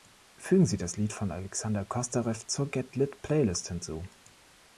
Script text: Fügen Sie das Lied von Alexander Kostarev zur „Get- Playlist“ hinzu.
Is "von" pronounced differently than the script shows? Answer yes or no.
no